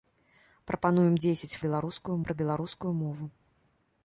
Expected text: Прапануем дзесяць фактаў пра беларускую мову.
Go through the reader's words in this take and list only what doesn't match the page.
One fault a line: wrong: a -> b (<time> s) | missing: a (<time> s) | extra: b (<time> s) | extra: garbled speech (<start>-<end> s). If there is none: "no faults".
wrong: фактаў -> беларускую (1.6 s)